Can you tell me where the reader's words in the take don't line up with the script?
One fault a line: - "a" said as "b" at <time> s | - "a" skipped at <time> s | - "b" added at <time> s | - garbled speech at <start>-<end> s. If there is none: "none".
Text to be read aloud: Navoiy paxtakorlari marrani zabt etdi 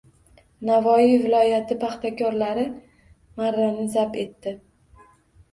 - "viloyati" added at 1.2 s